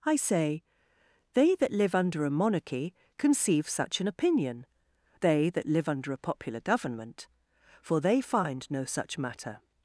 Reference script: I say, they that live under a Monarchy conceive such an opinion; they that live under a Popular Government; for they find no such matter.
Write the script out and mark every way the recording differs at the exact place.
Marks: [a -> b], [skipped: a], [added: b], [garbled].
I say, they that live under a Monarchy conceive such an opinion; they that live under a Popular Government; for they find no such matter.